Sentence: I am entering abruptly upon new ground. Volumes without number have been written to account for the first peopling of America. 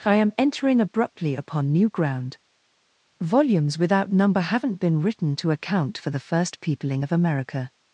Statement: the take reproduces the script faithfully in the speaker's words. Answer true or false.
false